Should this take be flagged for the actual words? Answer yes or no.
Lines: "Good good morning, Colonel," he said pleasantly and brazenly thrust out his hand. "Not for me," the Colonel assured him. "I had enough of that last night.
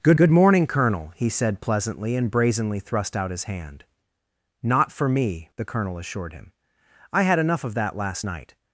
no